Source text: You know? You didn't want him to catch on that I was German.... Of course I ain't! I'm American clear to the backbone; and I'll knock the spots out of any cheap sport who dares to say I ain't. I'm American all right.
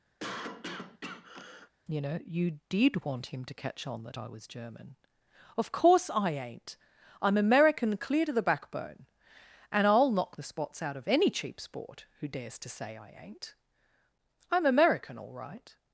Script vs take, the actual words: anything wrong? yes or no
yes